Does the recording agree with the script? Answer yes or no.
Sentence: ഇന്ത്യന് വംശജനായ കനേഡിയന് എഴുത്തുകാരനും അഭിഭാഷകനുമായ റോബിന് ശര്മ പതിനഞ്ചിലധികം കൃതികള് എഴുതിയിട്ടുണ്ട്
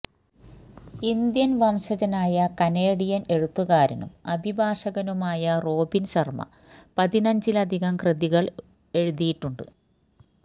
yes